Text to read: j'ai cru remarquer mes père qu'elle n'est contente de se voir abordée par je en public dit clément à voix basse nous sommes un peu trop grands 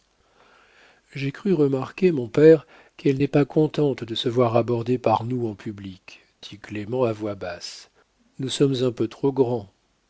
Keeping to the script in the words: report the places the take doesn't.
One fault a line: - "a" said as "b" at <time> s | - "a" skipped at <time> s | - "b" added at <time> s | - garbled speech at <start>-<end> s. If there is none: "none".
- "mes" said as "mon" at 2.1 s
- "pas" added at 3.3 s
- "je" said as "nous" at 5.3 s